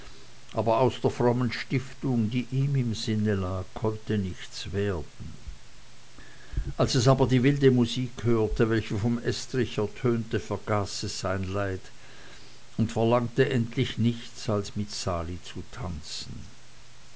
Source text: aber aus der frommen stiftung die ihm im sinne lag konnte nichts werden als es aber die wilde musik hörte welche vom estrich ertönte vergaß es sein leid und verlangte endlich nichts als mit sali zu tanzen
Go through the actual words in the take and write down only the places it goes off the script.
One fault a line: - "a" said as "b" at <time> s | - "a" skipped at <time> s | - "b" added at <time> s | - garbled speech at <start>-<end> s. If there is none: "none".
none